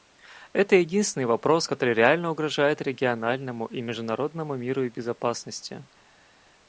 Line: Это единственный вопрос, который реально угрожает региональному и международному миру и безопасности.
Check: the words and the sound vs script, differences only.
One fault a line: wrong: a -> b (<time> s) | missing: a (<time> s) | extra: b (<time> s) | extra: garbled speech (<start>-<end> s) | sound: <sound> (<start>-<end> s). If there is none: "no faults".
no faults